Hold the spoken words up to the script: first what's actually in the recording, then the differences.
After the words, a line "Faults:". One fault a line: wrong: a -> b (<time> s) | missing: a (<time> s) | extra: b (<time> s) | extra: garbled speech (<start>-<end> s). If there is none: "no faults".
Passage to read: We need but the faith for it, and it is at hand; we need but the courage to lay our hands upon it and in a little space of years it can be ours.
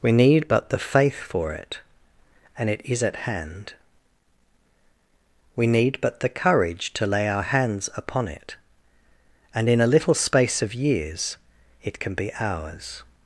We need but the faith for it, and it is at hand; we need but the courage to lay our hands upon it and in a little space of years it can be ours.
Faults:
no faults